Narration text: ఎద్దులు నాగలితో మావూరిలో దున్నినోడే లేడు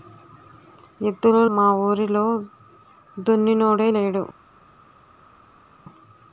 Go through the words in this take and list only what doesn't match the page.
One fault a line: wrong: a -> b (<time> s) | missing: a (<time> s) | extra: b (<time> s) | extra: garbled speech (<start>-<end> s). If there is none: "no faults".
missing: నాగలితో (1.4 s)